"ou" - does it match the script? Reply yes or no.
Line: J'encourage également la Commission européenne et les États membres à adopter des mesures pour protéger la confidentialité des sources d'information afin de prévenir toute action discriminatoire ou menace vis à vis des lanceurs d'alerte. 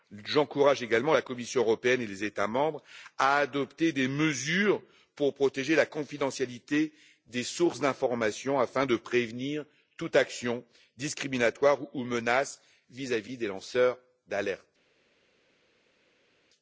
yes